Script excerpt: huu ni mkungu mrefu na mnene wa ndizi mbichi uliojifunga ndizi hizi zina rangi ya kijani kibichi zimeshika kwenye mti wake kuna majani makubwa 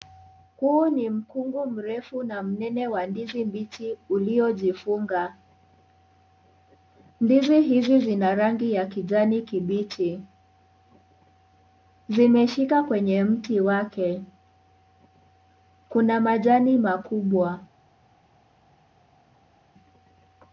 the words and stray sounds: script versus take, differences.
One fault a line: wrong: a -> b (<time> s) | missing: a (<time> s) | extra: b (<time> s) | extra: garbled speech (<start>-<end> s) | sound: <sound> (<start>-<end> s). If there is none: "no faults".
no faults